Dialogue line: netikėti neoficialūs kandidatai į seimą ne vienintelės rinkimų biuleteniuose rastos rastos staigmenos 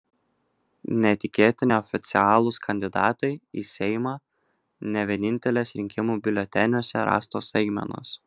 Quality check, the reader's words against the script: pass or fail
fail